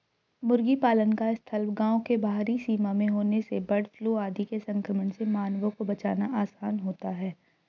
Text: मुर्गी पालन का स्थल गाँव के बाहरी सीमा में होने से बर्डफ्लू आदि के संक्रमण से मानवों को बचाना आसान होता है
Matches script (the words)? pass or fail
pass